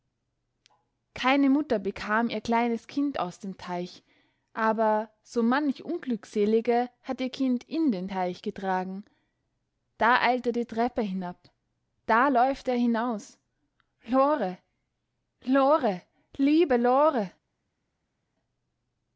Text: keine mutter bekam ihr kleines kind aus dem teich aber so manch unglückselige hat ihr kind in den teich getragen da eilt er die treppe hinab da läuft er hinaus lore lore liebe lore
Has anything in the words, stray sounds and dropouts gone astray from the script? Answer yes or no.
no